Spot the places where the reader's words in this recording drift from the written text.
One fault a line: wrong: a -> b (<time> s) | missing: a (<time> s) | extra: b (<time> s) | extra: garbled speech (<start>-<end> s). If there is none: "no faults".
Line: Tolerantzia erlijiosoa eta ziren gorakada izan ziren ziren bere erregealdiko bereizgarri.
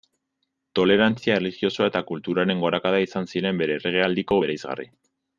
wrong: ziren -> kulturaren (2.1 s)
missing: ziren (3.6 s)